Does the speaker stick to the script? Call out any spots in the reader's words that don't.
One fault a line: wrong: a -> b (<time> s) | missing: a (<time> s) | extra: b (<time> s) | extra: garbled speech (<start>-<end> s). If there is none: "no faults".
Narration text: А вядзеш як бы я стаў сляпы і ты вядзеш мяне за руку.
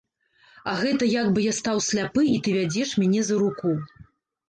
wrong: вядзеш -> гэта (0.8 s)